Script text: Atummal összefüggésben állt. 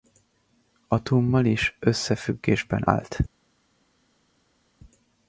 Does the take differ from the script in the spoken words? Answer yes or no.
yes